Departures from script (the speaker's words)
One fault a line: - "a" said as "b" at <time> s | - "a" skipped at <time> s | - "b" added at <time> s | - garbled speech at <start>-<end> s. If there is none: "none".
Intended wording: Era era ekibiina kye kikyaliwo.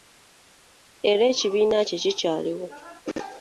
- "era" skipped at 1.2 s